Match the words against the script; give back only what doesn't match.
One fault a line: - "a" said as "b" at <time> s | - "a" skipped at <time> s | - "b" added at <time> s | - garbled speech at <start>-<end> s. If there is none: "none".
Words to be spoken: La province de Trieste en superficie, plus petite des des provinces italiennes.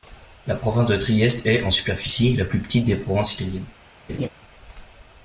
- "est" added at 1.4 s
- "la" added at 2.3 s
- "des" skipped at 2.9 s